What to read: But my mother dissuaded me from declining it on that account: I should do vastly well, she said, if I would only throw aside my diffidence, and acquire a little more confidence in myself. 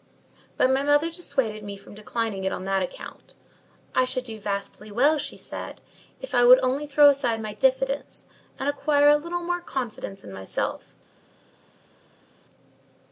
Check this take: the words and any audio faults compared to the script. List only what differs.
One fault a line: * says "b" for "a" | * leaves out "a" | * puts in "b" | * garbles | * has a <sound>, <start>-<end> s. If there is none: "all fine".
all fine